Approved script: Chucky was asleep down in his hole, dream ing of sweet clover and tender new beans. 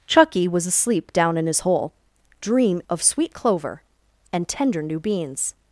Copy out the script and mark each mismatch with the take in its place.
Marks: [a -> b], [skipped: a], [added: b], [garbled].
Chucky was asleep down in his hole, dream [skipped: ing] of sweet clover and tender new beans.